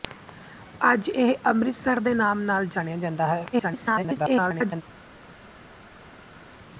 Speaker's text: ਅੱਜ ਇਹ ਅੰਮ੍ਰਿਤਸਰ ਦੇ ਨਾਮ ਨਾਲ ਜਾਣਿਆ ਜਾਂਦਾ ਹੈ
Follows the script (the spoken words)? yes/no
no